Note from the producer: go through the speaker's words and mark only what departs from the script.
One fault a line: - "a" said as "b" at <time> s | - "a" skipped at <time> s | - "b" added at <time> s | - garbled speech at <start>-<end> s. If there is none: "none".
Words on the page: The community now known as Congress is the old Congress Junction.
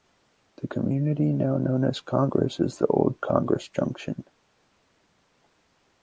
none